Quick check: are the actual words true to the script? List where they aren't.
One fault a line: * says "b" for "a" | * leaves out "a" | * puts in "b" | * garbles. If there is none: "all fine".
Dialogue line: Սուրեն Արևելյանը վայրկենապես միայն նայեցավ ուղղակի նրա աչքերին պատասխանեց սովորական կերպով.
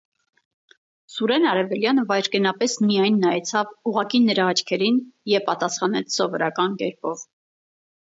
* puts in "և"